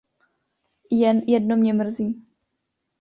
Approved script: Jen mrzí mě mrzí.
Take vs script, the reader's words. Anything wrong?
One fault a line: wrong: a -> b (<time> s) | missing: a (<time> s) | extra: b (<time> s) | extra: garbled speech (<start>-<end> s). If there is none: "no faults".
wrong: mrzí -> jedno (1.3 s)